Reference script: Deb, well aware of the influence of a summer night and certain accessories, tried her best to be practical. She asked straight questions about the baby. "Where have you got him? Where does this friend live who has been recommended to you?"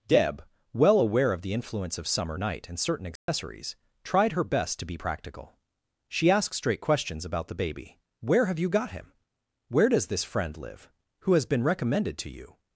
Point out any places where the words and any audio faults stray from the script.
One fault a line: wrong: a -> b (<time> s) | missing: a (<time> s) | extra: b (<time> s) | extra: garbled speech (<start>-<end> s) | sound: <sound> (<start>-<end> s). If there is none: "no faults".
missing: a (2.1 s)
sound: dropout (3.2-3.3 s)